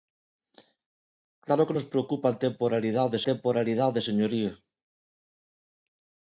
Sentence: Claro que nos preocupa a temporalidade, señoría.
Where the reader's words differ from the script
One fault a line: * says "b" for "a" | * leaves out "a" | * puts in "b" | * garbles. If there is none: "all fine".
* puts in "temporalidade"